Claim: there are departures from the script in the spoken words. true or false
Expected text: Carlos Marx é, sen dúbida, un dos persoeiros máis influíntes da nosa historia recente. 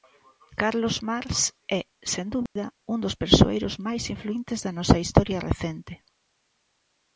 false